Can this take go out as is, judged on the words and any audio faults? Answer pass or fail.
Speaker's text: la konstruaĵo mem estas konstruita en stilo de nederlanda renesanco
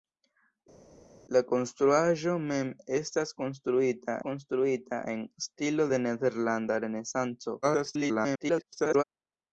fail